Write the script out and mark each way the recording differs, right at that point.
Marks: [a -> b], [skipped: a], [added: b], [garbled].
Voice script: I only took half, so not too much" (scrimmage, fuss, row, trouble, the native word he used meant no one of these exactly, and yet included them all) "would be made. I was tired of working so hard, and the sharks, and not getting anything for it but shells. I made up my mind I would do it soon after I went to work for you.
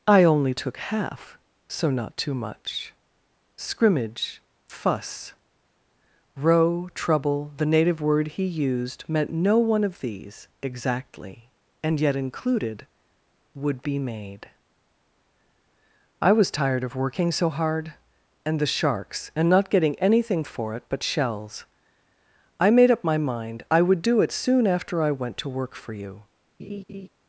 I only took half, so not too much" (scrimmage, fuss, row, trouble, the native word he used meant no one of these exactly, and yet included [skipped: them all)] "would be made. I was tired of working so hard, and the sharks, and not getting anything for it but shells. I made up my mind I would do it soon after I went to work for you.